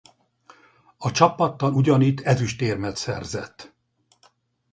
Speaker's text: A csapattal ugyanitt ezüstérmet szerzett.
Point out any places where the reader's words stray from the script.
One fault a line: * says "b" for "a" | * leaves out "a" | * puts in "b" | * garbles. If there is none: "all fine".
all fine